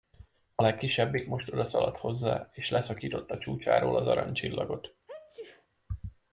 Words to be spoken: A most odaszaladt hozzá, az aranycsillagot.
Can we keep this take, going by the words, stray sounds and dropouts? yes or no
no